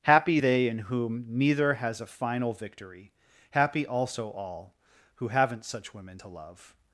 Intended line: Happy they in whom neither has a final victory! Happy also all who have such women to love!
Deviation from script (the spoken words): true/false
true